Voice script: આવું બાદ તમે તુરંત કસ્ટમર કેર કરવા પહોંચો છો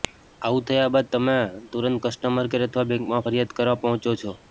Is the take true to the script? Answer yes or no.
no